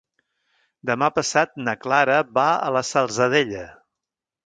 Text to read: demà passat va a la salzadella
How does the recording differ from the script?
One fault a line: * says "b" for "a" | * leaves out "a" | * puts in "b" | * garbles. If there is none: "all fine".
* puts in "na clara"